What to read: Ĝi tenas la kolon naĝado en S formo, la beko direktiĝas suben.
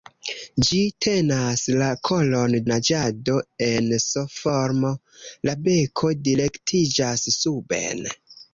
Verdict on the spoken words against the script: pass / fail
pass